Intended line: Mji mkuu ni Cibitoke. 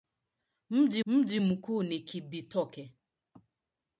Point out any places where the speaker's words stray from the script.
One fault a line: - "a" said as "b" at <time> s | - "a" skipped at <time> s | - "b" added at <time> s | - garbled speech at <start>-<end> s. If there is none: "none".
- "mji" added at 1.0 s